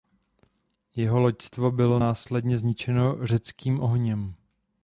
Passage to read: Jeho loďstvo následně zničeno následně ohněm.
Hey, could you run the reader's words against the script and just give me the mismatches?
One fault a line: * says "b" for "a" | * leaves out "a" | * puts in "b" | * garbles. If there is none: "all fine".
* puts in "bylo"
* says "řeckým" for "následně"